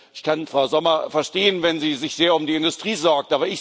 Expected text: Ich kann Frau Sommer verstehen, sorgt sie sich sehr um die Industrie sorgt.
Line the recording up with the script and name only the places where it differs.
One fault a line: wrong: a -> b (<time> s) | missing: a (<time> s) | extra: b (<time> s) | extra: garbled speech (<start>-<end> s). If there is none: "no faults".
wrong: sorgt -> wenn (1.6 s)